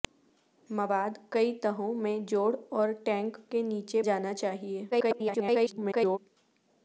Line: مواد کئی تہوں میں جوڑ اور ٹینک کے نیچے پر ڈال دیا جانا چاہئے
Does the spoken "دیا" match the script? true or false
false